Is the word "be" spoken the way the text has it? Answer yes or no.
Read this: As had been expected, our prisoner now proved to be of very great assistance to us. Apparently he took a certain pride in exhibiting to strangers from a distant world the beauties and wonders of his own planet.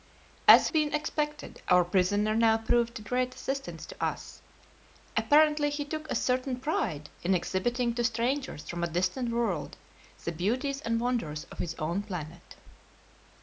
no